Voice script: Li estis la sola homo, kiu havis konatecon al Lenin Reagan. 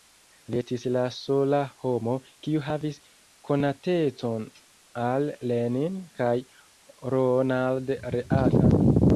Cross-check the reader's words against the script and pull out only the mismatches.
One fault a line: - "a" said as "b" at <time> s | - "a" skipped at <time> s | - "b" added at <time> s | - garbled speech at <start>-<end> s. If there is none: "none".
- "kaj Ronald" added at 6.2 s